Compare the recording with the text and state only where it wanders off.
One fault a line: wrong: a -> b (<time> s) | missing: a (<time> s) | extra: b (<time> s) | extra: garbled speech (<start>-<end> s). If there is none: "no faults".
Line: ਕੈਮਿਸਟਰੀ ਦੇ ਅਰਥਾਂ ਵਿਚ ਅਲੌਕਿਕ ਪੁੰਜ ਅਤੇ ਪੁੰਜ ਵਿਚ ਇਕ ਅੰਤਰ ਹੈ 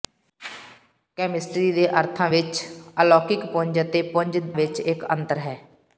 no faults